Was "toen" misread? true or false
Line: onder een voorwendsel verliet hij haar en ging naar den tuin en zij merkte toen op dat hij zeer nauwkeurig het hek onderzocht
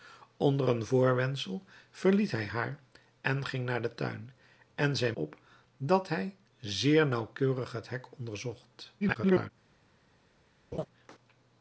true